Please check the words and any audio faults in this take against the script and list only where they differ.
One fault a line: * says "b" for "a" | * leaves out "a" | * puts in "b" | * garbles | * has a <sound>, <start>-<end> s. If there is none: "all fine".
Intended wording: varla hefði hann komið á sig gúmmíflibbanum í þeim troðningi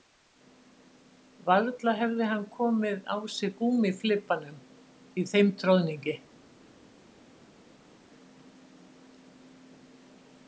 all fine